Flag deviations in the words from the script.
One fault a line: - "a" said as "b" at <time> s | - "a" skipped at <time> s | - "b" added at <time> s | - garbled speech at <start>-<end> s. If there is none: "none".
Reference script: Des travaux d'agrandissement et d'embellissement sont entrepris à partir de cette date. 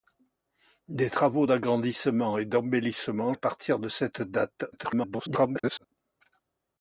- "sont entrepris" skipped at 3.3 s
- garbled speech at 4.7-5.8 s